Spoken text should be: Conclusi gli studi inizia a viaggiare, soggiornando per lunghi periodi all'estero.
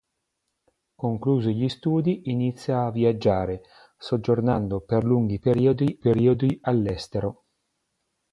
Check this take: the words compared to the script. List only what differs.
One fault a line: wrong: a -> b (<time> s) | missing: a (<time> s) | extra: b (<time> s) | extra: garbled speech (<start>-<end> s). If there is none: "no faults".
extra: periodi (6.0 s)